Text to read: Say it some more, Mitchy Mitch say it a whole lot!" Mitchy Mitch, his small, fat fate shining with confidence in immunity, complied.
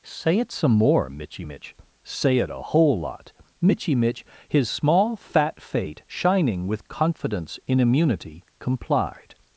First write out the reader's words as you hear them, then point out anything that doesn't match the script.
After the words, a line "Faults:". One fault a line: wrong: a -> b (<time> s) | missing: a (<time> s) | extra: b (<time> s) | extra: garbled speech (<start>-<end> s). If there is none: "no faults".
Say it some more, Mitchy Mitch say it a whole lot!" Mitchy Mitch, his small, fat fate shining with confidence in immunity, complied.
Faults:
no faults